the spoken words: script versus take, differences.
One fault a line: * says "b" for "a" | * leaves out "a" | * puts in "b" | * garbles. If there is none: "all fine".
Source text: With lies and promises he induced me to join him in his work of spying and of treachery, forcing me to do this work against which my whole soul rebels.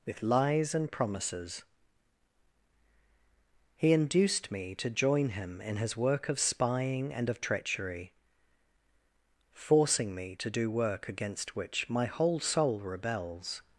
* leaves out "this"